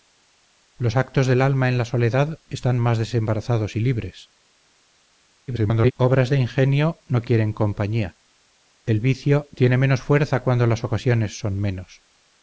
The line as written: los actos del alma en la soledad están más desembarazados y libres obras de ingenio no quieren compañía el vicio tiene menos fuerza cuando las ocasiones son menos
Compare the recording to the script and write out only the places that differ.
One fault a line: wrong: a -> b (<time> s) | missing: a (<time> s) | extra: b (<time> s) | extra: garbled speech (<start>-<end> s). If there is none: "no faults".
extra: garbled speech (5.5-5.9 s)